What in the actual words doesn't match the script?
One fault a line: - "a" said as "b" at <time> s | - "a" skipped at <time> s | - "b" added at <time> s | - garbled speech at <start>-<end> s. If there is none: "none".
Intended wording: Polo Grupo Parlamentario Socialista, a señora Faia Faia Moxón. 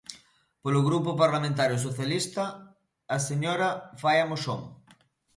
- "Faia" skipped at 4.3 s